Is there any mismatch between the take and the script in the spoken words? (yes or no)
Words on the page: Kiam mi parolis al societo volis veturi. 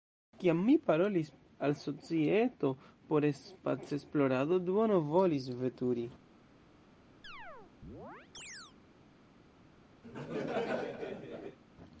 yes